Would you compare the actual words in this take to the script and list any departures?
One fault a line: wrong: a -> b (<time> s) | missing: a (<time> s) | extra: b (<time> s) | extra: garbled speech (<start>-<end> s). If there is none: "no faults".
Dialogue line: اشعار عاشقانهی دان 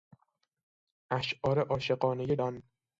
no faults